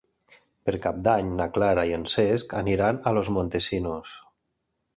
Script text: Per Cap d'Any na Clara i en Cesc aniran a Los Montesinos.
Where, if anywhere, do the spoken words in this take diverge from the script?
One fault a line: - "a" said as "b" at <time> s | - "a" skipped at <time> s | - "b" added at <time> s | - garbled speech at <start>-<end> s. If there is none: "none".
none